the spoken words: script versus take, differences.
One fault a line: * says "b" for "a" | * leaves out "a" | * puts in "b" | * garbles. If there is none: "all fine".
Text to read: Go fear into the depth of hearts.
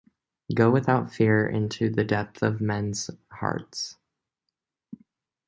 * puts in "without"
* puts in "men's"